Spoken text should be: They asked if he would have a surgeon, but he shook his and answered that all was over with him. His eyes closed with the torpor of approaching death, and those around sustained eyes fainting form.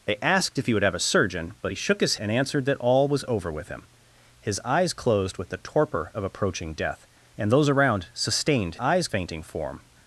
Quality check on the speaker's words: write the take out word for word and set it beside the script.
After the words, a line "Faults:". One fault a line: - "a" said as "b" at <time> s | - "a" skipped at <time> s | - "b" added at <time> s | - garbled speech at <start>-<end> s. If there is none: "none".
They asked if he would have a surgeon, but he shook his and answered that all was over with him. His eyes closed with the torpor of approaching death, and those around sustained eyes fainting form.
Faults:
none